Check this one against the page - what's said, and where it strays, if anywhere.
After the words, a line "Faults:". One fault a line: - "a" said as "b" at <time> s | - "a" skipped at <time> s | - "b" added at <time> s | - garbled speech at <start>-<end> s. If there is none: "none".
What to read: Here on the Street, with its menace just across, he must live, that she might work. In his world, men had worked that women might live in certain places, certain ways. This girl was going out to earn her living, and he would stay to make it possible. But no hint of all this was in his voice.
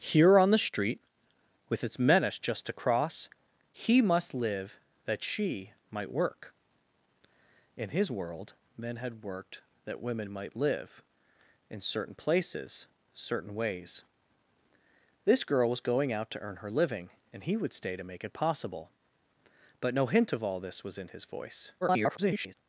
Here on the Street, with its menace just across, he must live, that she might work. In his world, men had worked that women might live in certain places, certain ways. This girl was going out to earn her living, and he would stay to make it possible. But no hint of all this was in his voice. [garbled]
Faults:
- garbled speech at 21.8-22.5 s